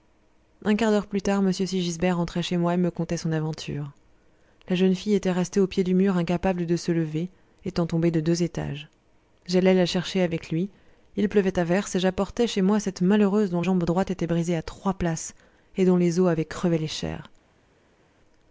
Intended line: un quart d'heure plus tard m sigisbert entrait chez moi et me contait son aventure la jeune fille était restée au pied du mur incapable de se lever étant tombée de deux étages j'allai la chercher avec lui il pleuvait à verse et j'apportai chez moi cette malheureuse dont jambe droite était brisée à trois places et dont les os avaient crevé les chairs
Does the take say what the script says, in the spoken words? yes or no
yes